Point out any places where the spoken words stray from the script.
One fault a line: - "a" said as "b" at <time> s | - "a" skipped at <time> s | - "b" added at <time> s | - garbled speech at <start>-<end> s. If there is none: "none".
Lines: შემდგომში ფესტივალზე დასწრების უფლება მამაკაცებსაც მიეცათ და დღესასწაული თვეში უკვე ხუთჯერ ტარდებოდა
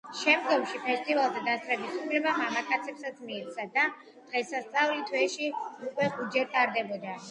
none